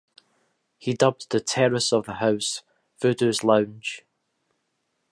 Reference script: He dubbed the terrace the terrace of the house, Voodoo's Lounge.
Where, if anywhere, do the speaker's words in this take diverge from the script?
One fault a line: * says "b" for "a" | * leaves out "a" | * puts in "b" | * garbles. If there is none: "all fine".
* leaves out "the terrace"